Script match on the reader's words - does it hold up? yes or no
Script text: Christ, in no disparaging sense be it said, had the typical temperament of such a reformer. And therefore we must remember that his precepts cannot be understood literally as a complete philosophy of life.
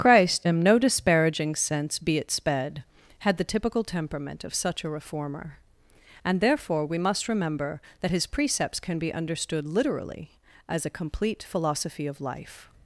no